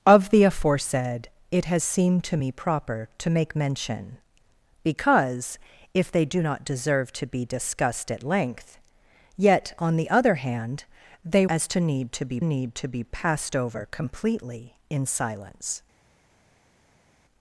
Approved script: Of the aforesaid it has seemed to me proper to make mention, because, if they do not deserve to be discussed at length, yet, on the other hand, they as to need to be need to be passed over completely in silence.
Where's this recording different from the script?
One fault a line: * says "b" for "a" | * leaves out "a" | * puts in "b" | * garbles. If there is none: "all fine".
all fine